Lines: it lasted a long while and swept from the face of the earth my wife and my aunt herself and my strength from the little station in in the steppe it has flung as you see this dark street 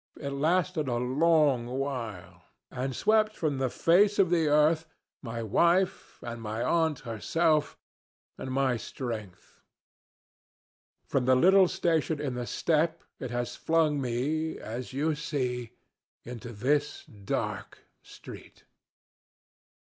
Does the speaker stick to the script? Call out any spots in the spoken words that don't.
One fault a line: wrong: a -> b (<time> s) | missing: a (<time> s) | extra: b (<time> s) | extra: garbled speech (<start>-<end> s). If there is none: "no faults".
missing: in (12.3 s)
extra: me (14.0 s)
extra: into (16.2 s)